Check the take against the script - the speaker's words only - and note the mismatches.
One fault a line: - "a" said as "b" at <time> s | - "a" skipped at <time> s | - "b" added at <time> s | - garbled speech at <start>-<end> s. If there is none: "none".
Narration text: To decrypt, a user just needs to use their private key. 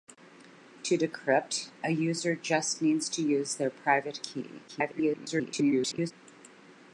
- garbled speech at 4.7-6.1 s